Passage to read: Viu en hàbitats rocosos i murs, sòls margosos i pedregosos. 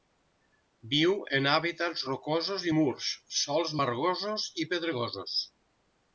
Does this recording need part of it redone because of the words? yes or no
no